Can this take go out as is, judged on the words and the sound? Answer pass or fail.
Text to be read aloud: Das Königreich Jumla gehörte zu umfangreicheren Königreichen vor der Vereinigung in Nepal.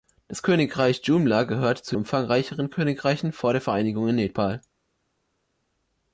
pass